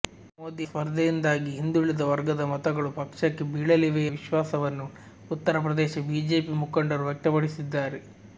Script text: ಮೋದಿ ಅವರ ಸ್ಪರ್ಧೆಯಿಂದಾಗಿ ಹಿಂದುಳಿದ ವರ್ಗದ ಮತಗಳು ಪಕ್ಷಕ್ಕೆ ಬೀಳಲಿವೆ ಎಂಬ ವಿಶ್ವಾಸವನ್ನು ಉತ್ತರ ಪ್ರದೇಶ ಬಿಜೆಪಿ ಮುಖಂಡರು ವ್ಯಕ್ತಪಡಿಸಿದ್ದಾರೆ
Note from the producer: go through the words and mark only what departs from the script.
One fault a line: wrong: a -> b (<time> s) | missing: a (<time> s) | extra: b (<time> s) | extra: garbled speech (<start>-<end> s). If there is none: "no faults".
missing: ಅವರ (0.7 s)
missing: ಎಂಬ (4.0 s)